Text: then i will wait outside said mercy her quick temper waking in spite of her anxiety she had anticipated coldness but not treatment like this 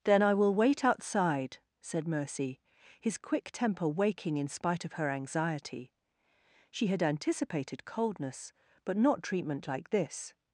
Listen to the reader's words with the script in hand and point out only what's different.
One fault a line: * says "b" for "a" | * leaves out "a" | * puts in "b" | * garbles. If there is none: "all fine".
* says "his" for "her"